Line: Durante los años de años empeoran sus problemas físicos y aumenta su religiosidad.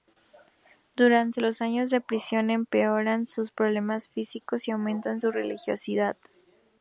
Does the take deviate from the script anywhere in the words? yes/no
yes